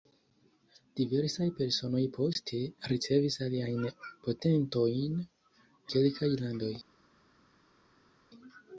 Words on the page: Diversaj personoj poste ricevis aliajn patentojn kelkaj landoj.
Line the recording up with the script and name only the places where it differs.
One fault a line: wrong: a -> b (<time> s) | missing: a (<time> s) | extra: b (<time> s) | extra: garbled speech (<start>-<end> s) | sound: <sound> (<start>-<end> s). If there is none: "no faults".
no faults